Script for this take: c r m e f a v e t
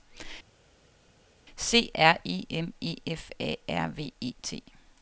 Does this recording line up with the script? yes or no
no